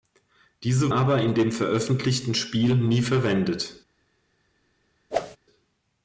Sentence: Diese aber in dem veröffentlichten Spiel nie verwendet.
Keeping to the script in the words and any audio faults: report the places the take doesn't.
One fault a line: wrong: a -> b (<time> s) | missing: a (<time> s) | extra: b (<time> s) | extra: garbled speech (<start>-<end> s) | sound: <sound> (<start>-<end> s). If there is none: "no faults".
sound: whoosh (5.1-5.4 s)